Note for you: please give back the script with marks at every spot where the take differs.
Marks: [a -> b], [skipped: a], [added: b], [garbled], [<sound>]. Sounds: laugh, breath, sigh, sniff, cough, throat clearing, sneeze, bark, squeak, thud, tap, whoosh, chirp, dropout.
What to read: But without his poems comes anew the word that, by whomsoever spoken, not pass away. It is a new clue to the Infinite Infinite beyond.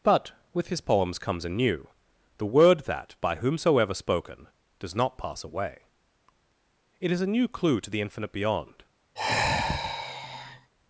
But [without -> with] his poems comes anew the word that, by whomsoever spoken, [added: does] not pass away. It is a new clue to the Infinite [skipped: Infinite] beyond. [sigh]